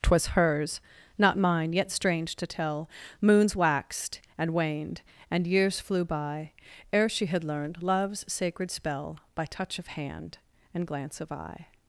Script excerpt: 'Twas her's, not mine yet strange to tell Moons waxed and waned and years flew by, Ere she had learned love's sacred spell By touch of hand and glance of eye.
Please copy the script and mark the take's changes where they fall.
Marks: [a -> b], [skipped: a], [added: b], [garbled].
'Twas her's, not mine yet strange to tell Moons waxed and waned and years flew by, Ere she had learned love's sacred spell By touch of hand and glance of eye.